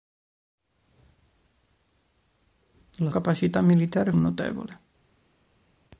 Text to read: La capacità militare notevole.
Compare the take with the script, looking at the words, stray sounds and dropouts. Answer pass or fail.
pass